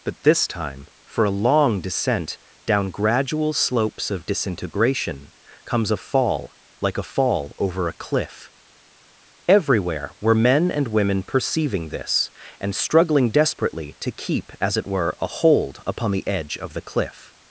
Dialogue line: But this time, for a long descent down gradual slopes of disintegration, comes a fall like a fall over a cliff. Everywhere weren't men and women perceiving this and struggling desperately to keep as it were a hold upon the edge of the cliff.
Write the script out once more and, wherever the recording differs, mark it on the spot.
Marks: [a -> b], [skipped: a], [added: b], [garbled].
But this time, for a long descent down gradual slopes of disintegration, comes a fall like a fall over a cliff. Everywhere [weren't -> were] men and women perceiving this and struggling desperately to keep as it were a hold upon the edge of the cliff.